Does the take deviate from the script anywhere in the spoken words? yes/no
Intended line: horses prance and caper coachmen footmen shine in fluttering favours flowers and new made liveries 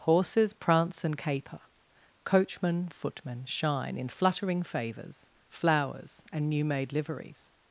no